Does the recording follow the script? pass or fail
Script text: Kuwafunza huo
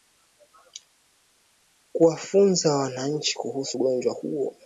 fail